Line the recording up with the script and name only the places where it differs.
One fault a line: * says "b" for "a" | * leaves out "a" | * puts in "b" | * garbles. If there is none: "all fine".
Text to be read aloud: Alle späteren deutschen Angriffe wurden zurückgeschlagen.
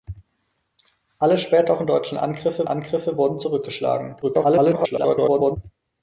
* puts in "Angriffe"
* garbles